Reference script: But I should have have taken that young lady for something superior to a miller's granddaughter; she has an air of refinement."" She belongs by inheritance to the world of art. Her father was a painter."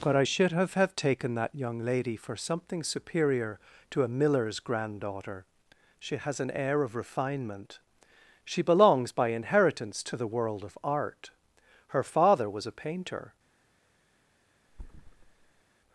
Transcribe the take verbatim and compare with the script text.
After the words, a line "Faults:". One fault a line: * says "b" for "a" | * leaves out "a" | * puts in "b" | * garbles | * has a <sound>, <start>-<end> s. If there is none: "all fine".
But I should have have taken that young lady for something superior to a miller's granddaughter; she has an air of refinement."" She belongs by inheritance to the world of art. Her father was a painter."
Faults:
* has a thud, 14.7-15.6 s